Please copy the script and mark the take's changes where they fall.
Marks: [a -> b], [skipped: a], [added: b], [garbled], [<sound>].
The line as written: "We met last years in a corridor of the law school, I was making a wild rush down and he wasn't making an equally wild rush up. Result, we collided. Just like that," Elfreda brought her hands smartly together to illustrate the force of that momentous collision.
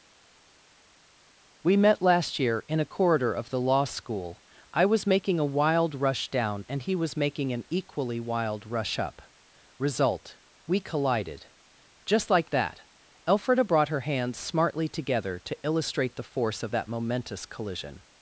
"We met last [years -> year] in a corridor of the law school, I was making a wild rush down and he [wasn't -> was] making an equally wild rush up. Result, we collided. Just like that," Elfreda brought her hands smartly together to illustrate the force of that momentous collision.